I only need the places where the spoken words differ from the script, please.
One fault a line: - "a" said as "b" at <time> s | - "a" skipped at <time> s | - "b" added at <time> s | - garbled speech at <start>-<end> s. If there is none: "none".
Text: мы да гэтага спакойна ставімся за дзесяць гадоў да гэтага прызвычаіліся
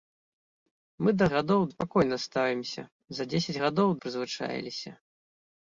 - "гэтага" said as "гадоў" at 1.3 s
- "да гэтага" skipped at 3.9 s